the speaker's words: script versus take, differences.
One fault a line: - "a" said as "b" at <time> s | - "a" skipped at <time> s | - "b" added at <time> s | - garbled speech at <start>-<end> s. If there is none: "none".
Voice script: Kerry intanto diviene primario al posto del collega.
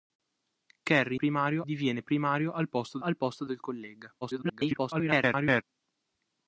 - "intanto" said as "primario" at 1.1 s
- "al posto" added at 3.0 s
- garbled speech at 4.2-5.6 s